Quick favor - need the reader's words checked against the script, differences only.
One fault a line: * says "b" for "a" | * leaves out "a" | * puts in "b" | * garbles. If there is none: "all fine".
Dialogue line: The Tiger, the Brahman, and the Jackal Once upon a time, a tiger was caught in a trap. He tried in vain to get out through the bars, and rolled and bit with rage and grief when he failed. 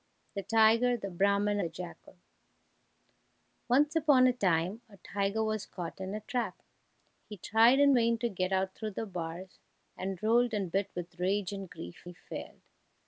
* leaves out "and"
* leaves out "when"